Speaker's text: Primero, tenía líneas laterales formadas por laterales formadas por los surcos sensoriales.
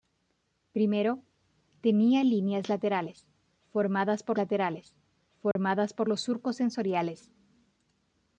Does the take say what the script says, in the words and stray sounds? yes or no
no